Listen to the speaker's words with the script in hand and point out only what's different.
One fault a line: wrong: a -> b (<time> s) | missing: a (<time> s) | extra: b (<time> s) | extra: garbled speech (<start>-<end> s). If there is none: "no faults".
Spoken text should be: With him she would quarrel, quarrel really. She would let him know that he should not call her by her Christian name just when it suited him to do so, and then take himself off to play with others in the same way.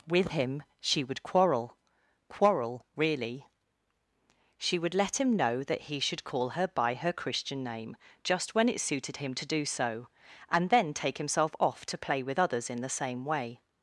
missing: not (6.2 s)